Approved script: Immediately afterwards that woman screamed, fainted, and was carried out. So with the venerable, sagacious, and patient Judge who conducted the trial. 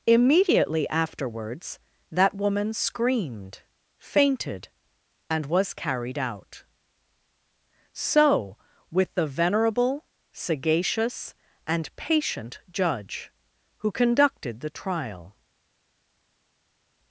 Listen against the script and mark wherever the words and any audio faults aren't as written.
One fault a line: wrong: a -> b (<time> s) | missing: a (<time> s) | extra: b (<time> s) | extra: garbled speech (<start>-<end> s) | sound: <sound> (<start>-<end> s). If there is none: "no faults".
no faults